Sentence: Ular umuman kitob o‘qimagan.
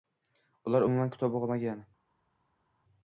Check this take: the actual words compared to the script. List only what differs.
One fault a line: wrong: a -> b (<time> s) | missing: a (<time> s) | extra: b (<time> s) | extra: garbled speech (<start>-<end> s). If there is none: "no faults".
no faults